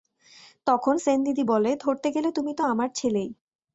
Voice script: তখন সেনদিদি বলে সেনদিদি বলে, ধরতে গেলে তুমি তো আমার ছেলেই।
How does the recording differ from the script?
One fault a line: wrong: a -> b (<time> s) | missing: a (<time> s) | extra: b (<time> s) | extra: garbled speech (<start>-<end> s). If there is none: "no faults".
missing: সেনদিদি বলে (1.7 s)